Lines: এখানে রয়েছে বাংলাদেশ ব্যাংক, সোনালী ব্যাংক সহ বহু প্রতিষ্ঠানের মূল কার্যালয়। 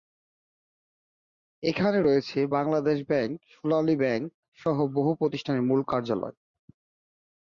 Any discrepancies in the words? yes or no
no